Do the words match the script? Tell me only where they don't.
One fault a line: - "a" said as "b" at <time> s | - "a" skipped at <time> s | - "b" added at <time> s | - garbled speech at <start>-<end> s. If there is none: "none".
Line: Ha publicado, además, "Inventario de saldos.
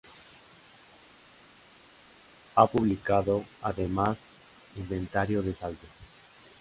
none